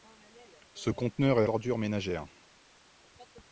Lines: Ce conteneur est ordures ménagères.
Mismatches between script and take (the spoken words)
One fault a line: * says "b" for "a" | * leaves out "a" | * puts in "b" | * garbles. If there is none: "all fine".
all fine